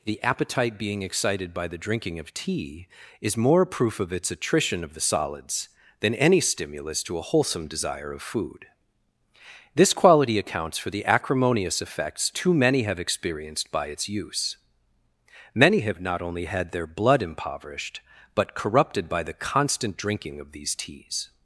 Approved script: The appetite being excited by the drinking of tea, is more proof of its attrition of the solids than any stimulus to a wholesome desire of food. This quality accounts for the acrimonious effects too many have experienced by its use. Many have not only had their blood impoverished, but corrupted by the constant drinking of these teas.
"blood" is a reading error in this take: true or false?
false